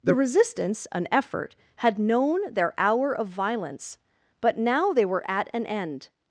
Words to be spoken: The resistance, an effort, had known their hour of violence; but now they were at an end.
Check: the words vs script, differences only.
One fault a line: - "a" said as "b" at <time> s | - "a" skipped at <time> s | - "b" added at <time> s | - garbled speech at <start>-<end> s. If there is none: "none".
none